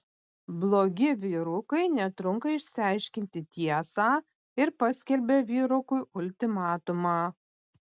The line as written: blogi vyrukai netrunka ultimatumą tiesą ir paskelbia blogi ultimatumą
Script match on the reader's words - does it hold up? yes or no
no